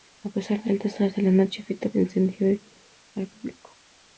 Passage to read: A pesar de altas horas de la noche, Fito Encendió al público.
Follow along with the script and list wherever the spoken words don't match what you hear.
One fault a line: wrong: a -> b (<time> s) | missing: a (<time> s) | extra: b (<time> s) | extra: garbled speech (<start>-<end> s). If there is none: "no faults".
no faults